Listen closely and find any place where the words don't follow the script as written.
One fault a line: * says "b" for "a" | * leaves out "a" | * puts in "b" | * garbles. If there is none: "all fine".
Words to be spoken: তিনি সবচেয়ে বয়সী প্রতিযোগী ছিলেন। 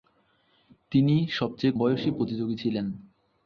all fine